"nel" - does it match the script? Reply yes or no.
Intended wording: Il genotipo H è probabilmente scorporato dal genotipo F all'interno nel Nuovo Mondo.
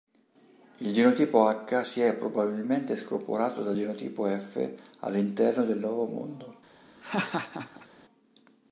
no